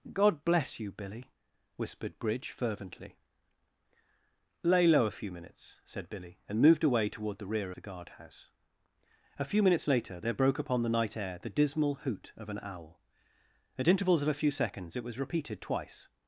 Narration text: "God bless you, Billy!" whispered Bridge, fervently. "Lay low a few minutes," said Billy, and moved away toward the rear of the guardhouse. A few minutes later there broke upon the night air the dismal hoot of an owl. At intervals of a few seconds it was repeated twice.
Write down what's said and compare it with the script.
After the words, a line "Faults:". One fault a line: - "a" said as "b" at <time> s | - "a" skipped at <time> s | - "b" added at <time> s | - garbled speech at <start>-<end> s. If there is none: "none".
"God bless you, Billy!" whispered Bridge, fervently. "Lay low a few minutes," said Billy, and moved away toward the rear the guardhouse. A few minutes later there broke upon the night air the dismal hoot of an owl. At intervals of a few seconds it was repeated twice.
Faults:
- "of" skipped at 7.7 s